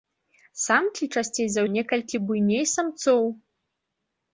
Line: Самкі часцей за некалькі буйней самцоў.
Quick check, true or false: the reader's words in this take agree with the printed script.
true